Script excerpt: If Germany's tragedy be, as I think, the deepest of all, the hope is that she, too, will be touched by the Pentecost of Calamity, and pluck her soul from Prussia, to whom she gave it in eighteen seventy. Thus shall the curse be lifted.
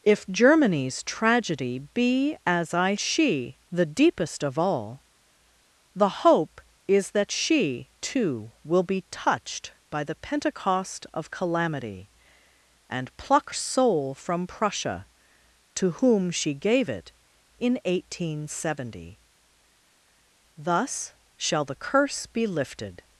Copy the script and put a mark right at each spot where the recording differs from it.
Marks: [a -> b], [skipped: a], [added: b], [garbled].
If Germany's tragedy be, as I [think, -> she] the deepest of all, the hope is that she, too, will be touched by the Pentecost of Calamity, and pluck [skipped: her] soul from Prussia, to whom she gave it in eighteen seventy. Thus shall the curse be lifted.